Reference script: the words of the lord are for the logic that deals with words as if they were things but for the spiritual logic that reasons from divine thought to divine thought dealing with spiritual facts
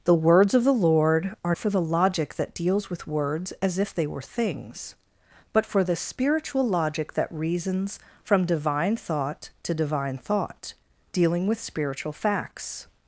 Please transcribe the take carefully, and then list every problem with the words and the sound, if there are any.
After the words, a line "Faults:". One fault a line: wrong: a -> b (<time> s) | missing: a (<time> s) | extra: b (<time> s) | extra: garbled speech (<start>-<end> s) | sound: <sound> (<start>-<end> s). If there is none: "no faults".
the words of the lord are for the logic that deals with words as if they were things but for the spiritual logic that reasons from divine thought to divine thought dealing with spiritual facts
Faults:
no faults